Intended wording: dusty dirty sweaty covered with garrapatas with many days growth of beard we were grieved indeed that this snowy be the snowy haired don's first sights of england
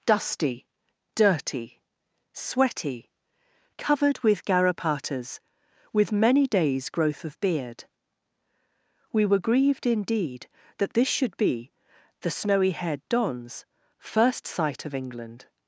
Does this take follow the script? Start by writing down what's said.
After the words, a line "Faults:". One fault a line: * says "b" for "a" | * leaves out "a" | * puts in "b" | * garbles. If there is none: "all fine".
dusty dirty sweaty covered with garrapatas with many days growth of beard we were grieved indeed that this should be the snowy haired don's first sight of england
Faults:
* says "should" for "snowy"
* says "sight" for "sights"